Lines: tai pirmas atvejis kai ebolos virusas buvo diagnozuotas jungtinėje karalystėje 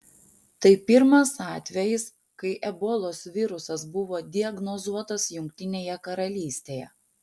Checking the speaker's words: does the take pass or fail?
pass